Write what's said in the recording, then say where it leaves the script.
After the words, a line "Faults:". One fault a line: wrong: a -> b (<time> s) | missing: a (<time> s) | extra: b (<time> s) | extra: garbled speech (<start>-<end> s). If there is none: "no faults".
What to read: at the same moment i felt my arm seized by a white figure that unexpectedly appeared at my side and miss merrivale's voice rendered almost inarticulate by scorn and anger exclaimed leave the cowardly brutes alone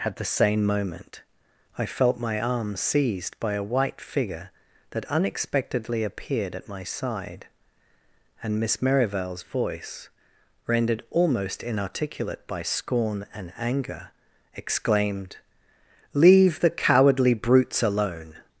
at the same moment i felt my arm seized by a white figure that unexpectedly appeared at my side and miss merrivale's voice rendered almost inarticulate by scorn and anger exclaimed leave the cowardly brutes alone
Faults:
no faults